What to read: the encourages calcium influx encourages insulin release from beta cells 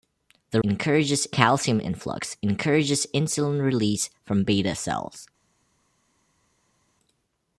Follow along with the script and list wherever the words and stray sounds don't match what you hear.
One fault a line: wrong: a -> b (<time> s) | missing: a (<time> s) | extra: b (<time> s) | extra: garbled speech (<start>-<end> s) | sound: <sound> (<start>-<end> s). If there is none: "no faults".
no faults